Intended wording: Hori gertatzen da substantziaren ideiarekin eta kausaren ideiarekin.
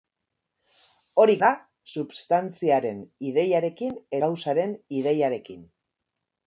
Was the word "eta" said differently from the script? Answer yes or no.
yes